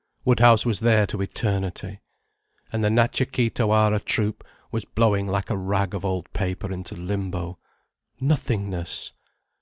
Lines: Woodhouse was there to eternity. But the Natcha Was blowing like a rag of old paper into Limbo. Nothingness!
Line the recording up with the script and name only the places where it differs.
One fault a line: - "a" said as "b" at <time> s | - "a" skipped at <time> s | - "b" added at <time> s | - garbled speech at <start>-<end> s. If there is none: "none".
- "But" said as "And" at 2.7 s
- "Kee Tawara Troupe" added at 3.3 s